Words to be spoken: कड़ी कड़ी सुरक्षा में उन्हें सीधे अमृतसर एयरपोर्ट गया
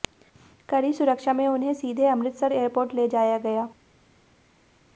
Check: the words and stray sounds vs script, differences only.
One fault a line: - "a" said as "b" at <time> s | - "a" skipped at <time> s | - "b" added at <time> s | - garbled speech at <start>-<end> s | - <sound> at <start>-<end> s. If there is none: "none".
- "कड़ी" skipped at 0.9 s
- "ले जाया" added at 2.9 s